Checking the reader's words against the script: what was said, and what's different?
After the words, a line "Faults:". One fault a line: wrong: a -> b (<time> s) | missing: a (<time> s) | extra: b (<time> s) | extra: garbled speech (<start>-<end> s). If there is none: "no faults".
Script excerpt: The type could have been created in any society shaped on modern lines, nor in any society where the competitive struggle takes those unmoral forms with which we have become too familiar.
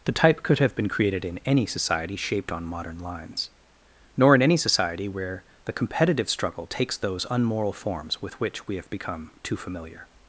The type could have been created in any society shaped on modern lines, nor in any society where the competitive struggle takes those unmoral forms with which we have become too familiar.
Faults:
no faults